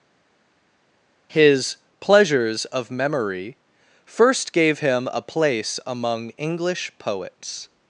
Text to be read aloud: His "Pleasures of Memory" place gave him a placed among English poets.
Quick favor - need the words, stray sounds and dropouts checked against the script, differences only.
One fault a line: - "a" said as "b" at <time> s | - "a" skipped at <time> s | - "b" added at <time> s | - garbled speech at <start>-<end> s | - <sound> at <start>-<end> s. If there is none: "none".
- "place" said as "first" at 4.0 s
- "placed" said as "place" at 5.2 s